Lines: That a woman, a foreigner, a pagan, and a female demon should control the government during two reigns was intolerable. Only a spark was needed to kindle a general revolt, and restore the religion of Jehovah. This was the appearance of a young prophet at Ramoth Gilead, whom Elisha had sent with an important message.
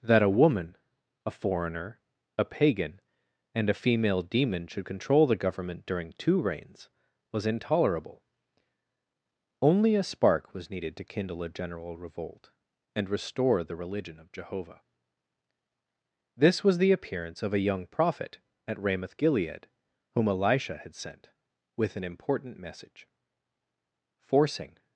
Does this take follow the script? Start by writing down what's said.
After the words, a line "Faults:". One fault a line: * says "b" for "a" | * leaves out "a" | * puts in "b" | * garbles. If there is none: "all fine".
That a woman, a foreigner, a pagan, and a female demon should control the government during two reigns was intolerable. Only a spark was needed to kindle a general revolt, and restore the religion of Jehovah. This was the appearance of a young prophet at Ramoth Gilead, whom Elisha had sent with an important message. Forcing
Faults:
* puts in "Forcing"